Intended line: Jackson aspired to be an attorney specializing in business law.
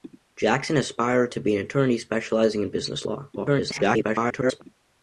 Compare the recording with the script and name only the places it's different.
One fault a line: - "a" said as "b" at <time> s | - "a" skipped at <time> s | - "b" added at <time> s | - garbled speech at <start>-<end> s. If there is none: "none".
- garbled speech at 3.4-4.6 s